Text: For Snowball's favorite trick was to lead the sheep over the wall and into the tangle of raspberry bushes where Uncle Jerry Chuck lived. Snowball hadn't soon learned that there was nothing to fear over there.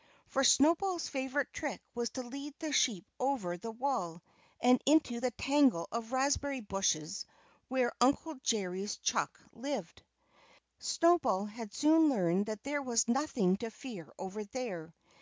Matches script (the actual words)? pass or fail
fail